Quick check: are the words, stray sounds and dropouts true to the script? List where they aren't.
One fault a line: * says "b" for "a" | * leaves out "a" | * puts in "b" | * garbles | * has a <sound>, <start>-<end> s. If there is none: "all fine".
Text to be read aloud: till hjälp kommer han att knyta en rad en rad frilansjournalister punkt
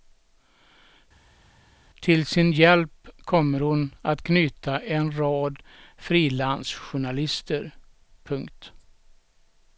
* puts in "sin"
* says "hon" for "han"
* leaves out "en rad"